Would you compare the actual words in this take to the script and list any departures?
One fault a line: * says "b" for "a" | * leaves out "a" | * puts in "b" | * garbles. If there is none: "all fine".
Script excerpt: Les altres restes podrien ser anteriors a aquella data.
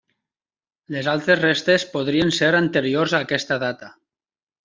* says "aquesta" for "aquella"